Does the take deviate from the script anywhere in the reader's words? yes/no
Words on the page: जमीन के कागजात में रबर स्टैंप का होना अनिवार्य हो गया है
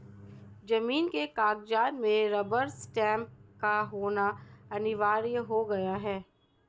no